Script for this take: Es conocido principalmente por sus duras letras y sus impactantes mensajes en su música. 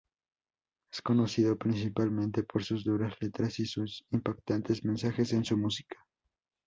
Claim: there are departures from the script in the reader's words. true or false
false